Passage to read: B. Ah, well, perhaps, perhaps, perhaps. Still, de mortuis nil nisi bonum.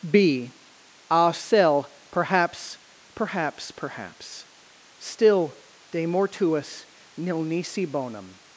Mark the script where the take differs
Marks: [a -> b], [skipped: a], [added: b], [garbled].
B. Ah, [well, -> cell] perhaps, perhaps, perhaps. Still, de mortuis nil nisi bonum.